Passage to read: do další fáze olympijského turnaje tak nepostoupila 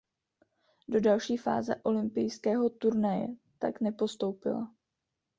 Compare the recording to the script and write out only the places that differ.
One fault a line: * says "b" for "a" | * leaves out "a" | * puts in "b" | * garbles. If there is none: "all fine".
all fine